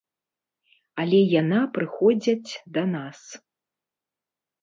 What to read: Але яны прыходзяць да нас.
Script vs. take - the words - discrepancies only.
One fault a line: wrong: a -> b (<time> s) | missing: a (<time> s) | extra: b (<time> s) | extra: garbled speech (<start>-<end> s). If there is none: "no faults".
wrong: яны -> яна (1.4 s)